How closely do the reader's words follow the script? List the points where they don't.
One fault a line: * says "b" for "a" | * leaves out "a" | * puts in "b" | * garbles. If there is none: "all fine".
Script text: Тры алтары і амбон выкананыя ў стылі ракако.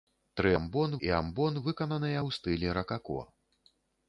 * says "амбон" for "алтары"